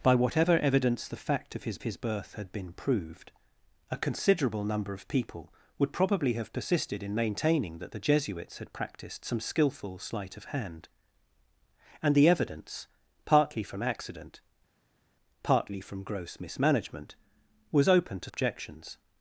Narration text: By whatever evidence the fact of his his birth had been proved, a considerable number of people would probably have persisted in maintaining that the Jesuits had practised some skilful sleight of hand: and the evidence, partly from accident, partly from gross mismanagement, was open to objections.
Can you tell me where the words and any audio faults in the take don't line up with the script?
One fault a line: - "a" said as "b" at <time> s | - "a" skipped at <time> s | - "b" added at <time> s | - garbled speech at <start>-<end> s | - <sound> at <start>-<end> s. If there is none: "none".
none